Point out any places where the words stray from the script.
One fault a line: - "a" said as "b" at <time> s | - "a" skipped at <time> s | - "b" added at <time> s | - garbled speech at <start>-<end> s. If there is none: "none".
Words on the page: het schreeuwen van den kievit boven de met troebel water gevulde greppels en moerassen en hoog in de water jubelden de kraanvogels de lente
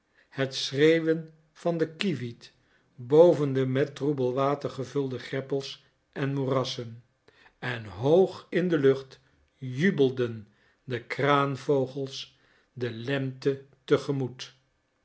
- "water" said as "lucht" at 8.8 s